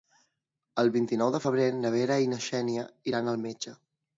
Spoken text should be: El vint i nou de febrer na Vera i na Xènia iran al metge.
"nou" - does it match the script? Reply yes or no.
yes